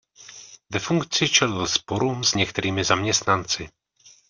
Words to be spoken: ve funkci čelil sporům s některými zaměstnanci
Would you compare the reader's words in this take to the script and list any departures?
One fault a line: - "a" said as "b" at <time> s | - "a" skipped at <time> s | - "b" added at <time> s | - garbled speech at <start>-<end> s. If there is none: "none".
none